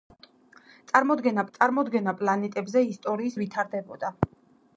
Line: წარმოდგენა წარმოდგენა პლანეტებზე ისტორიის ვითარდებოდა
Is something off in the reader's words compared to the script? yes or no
no